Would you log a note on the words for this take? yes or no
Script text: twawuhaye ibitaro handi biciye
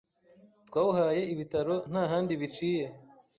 yes